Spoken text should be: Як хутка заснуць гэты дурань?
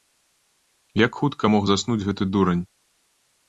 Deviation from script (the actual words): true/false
true